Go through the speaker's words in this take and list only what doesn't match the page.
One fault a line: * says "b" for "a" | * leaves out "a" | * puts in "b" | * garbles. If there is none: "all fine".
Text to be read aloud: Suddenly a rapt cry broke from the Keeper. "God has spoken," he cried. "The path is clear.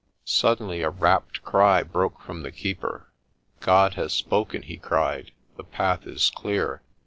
all fine